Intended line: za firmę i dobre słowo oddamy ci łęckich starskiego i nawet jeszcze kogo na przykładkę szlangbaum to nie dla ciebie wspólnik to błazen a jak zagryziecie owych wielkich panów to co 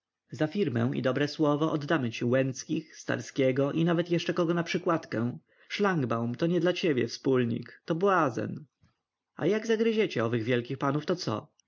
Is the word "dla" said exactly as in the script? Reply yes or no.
yes